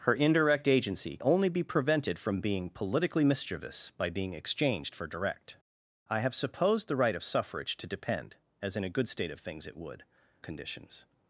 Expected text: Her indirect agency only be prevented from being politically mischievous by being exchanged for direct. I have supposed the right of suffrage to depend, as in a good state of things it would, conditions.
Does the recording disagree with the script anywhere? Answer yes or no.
no